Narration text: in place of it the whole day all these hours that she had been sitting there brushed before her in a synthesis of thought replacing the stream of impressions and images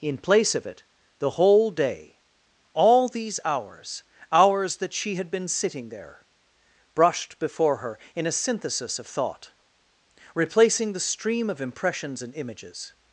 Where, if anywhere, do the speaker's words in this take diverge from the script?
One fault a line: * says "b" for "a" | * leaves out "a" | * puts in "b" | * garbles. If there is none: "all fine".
* puts in "hours"